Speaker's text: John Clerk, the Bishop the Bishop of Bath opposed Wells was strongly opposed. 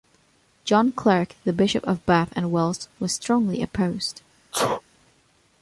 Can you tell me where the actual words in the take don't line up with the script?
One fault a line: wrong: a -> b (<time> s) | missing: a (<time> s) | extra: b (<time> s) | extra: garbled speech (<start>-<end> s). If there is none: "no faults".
missing: the Bishop (1.8 s)
wrong: opposed -> and (2.4 s)